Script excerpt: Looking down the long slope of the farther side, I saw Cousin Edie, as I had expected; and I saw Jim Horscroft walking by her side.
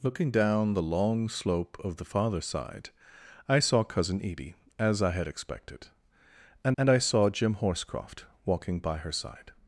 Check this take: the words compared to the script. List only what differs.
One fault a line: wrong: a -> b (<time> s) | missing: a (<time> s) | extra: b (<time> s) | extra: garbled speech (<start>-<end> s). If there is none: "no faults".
extra: and (6.8 s)